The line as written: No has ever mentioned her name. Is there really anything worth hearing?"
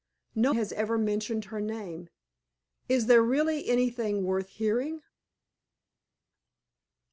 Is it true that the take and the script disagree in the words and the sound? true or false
false